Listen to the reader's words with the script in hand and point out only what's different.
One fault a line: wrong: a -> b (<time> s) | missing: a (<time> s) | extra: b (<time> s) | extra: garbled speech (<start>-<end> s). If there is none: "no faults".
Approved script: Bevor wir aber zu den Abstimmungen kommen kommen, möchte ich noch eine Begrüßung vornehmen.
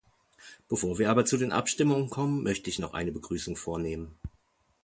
missing: kommen (2.4 s)